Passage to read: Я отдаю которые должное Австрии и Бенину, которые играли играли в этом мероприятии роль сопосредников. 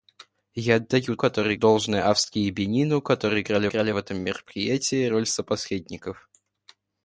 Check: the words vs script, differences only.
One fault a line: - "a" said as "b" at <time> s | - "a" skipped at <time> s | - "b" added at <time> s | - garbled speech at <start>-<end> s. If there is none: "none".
none